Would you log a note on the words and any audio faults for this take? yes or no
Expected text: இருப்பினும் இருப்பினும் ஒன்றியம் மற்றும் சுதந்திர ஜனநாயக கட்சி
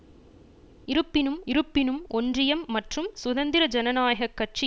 no